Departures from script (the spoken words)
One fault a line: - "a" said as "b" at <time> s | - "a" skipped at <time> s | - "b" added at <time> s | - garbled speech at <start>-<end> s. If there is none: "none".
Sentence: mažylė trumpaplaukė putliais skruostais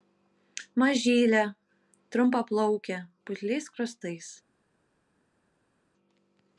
none